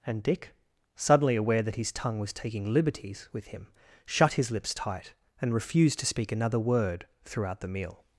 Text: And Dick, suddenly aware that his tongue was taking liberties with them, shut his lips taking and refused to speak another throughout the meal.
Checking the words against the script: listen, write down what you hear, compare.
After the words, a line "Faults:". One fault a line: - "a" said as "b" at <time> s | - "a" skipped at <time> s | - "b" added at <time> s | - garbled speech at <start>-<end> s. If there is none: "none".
And Dick, suddenly aware that his tongue was taking liberties with him, shut his lips tight and refused to speak another word throughout the meal.
Faults:
- "them" said as "him" at 3.5 s
- "taking" said as "tight" at 4.7 s
- "word" added at 6.6 s